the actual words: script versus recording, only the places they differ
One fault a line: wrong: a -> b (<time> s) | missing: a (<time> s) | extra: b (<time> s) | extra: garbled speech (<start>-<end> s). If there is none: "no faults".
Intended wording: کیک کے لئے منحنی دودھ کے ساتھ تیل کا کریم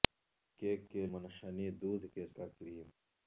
missing: لئے (1.1 s)
missing: ساتھ تیل (2.3 s)